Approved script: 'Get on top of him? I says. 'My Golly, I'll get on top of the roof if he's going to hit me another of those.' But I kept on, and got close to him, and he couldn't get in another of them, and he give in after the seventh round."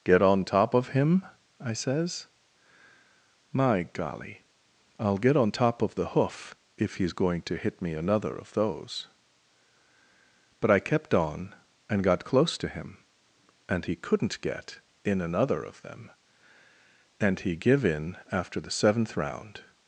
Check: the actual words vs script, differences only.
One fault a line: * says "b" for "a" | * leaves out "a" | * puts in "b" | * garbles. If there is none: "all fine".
* says "hoof" for "roof"